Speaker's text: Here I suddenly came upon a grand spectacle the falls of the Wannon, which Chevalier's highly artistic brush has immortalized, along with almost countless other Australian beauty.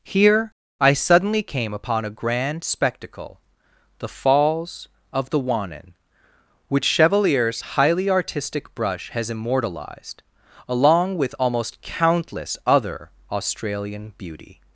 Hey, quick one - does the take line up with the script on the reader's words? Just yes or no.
yes